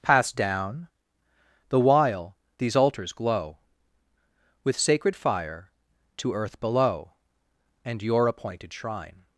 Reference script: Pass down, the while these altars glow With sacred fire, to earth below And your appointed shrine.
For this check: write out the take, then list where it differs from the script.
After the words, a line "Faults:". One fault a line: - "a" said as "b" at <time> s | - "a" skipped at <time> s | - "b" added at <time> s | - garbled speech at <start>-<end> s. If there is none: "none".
Pass down, the while these altars glow With sacred fire, to earth below And your appointed shrine.
Faults:
none